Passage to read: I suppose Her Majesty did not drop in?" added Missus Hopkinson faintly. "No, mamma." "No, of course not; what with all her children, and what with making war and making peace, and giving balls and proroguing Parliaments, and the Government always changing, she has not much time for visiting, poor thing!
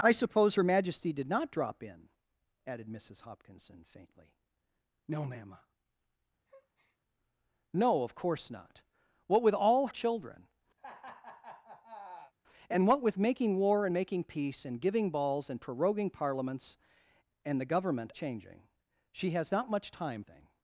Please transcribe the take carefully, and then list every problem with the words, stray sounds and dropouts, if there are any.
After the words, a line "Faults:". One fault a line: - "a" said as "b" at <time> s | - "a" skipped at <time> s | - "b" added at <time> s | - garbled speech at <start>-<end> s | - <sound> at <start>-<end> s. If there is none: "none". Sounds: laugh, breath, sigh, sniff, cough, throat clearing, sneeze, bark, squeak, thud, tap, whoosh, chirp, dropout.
I suppose Her Majesty did not drop in?" added Missus Hopkinson faintly. "No, mamma." "No, of course not; what with all children, and what with making war and making peace, and giving balls and proroguing Parliaments, and the Government changing, she has not much time thing!
Faults:
- breath at 6.5-7.0 s
- "her" skipped at 9.9 s
- laugh at 10.8-12.3 s
- "always" skipped at 18.1 s
- "for visiting poor" skipped at 20.2 s